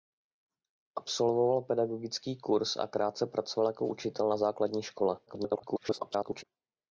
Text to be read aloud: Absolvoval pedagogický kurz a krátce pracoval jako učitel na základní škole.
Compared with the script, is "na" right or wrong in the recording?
right